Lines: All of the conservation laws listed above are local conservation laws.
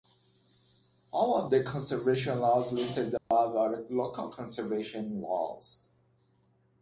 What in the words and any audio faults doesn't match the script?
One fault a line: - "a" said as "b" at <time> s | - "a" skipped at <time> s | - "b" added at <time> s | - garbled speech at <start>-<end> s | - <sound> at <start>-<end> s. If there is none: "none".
- dropout at 3.2-3.3 s